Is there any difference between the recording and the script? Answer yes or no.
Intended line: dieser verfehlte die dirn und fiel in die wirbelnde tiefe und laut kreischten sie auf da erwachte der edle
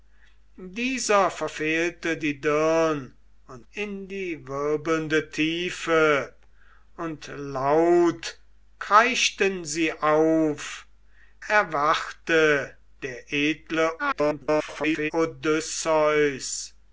yes